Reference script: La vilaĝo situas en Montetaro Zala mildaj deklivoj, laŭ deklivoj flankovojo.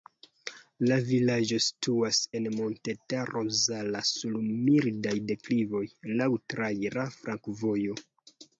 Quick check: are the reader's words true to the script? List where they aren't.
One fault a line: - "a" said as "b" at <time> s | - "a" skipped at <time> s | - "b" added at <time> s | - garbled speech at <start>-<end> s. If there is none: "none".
- "sur" added at 4.1 s
- "deklivoj" said as "traira" at 6.5 s